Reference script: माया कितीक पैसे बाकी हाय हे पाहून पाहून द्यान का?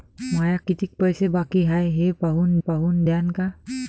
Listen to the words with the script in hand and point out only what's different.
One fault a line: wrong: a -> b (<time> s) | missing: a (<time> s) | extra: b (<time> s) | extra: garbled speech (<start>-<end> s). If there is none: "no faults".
no faults